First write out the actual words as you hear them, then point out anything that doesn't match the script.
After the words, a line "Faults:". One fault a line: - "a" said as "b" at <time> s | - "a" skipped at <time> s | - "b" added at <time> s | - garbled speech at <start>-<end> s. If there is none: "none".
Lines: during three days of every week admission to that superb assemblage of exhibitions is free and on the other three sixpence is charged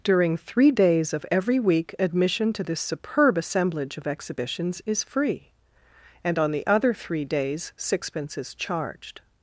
during three days of every week admission to this superb assemblage of exhibitions is free and on the other three days sixpence is charged
Faults:
- "that" said as "this" at 2.6 s
- "days" added at 7.2 s